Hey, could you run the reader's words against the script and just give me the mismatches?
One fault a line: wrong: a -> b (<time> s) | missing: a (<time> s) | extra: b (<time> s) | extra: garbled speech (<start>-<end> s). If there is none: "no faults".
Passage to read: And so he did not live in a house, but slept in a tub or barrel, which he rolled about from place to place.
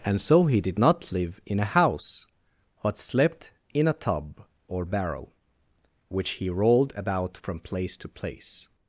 no faults